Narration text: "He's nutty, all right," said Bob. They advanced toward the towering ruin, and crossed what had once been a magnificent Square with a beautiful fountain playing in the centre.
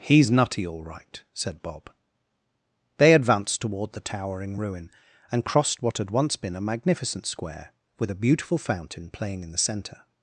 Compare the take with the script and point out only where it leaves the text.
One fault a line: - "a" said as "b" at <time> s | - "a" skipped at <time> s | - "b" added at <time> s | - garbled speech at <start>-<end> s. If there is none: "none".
none